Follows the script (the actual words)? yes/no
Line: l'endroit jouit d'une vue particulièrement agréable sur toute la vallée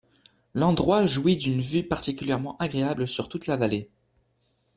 yes